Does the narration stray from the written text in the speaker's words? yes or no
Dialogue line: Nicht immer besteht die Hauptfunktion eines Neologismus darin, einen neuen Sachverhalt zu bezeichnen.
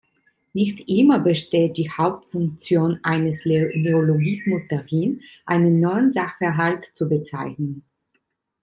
no